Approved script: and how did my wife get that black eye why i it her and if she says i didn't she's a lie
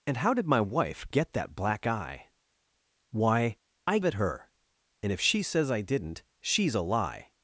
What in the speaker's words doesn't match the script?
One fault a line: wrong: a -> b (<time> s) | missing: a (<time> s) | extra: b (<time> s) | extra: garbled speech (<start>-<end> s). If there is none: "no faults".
no faults